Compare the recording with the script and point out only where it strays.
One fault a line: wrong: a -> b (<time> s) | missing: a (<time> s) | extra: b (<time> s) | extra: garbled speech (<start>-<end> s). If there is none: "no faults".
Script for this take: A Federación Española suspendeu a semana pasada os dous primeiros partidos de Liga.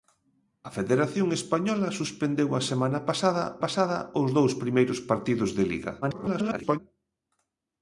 extra: pasada (3.6 s)
extra: garbled speech (6.0-6.8 s)